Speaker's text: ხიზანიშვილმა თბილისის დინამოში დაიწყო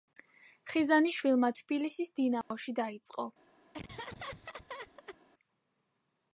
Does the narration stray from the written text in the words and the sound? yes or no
yes